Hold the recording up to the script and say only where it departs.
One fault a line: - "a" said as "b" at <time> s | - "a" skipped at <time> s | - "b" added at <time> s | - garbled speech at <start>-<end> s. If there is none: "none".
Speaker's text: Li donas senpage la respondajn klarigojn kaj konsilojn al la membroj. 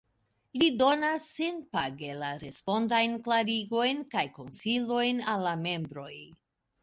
none